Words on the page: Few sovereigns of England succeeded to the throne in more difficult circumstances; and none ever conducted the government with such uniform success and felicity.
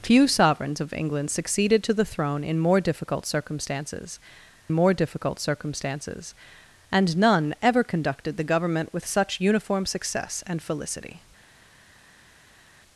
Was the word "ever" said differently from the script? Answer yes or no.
no